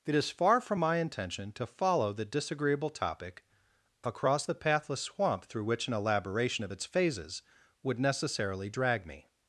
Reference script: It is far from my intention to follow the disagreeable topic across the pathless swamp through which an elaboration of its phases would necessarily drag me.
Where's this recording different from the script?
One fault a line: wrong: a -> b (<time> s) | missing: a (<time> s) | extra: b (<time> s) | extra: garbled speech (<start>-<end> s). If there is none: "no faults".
no faults